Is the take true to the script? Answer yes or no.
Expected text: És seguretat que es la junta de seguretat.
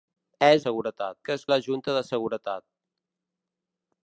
yes